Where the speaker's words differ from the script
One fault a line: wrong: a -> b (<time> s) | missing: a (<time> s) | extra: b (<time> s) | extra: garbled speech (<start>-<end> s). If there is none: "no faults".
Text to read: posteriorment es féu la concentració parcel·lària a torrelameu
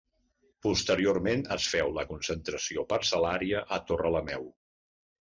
no faults